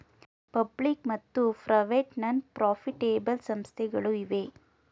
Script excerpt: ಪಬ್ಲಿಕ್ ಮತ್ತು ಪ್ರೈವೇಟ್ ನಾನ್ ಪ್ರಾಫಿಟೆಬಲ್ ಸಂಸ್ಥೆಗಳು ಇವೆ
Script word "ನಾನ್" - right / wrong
right